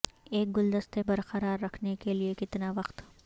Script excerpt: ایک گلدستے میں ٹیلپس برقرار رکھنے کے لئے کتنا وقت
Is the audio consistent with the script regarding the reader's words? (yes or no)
no